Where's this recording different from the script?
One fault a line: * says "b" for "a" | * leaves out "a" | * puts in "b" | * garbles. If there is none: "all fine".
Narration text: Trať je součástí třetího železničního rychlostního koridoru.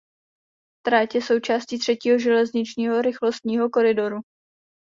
all fine